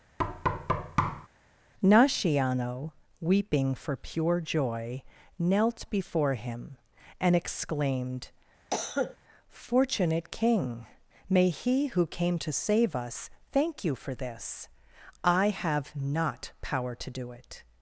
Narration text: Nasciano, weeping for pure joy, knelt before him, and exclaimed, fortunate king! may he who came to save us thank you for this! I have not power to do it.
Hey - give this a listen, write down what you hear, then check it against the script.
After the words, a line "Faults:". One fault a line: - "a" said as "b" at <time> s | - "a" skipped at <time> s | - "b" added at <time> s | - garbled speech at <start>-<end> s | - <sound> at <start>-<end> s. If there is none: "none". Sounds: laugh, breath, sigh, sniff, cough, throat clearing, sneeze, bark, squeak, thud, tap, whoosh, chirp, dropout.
Nasciano, weeping for pure joy, knelt before him, and exclaimed, fortunate king! may he who came to save us thank you for this! I have not power to do it.
Faults:
- thud at 0.2-1.3 s
- cough at 8.7-9.2 s